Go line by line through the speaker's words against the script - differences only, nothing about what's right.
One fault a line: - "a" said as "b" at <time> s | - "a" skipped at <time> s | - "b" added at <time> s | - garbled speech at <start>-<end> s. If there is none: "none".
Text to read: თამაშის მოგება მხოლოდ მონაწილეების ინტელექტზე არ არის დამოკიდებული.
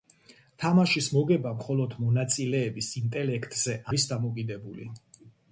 - "არ" skipped at 3.8 s